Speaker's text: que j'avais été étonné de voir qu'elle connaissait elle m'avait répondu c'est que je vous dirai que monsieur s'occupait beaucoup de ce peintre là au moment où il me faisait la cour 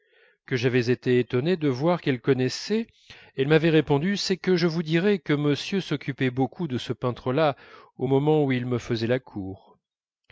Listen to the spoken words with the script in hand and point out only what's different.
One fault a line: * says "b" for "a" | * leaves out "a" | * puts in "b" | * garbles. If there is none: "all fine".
all fine